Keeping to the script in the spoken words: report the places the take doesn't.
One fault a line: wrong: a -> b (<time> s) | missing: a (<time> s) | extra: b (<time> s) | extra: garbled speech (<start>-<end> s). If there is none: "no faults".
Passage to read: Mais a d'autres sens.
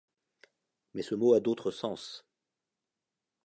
extra: ce mot (1.0 s)